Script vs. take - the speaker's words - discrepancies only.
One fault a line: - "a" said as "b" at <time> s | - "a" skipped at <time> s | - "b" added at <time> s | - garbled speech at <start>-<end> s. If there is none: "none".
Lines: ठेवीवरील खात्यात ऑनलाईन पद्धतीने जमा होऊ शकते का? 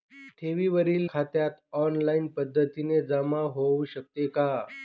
none